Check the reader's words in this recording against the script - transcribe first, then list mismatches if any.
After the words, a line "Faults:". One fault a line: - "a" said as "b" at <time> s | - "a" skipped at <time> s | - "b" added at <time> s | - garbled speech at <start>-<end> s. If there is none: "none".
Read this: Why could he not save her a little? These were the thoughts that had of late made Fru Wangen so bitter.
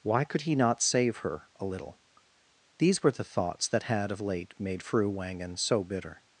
Why could he not save her a little? These were the thoughts that had of late made Fru Wangen so bitter.
Faults:
none